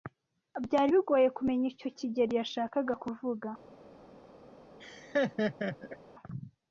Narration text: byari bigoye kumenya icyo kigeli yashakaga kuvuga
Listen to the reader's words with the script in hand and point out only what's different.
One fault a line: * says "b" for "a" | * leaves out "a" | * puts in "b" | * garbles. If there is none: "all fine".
all fine